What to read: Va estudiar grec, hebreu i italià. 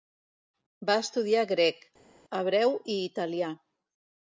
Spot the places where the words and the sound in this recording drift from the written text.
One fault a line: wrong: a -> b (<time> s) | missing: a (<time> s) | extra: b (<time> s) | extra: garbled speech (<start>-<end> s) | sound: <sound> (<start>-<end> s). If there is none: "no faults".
no faults